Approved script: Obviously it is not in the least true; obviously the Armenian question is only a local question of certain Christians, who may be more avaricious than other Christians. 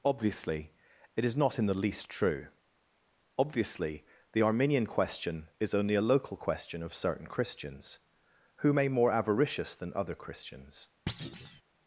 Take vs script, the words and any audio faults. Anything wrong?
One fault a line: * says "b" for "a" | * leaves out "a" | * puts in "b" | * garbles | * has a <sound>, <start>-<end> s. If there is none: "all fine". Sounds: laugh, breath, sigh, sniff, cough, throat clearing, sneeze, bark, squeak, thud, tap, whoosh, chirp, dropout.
* leaves out "be"
* has a thud, 11.1-11.6 s